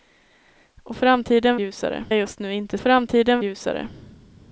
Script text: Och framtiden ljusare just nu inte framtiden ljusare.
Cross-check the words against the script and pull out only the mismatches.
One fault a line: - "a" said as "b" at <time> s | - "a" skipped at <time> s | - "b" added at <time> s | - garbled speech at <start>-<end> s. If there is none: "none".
none